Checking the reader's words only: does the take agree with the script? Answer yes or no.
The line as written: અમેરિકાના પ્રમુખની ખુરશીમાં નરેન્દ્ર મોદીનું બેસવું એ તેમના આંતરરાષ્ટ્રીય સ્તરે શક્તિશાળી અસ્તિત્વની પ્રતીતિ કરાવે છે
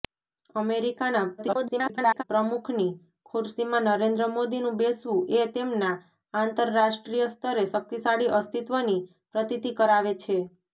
no